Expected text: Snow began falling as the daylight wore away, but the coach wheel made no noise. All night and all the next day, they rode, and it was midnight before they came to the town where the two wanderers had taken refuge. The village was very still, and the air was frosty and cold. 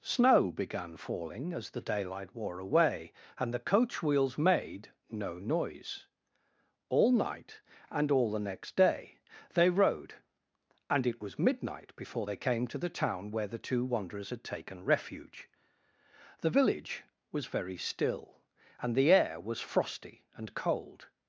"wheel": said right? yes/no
no